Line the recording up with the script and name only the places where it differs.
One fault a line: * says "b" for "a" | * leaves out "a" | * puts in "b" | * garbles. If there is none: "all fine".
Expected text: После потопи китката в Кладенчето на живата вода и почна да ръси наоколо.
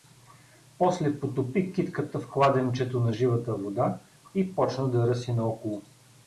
all fine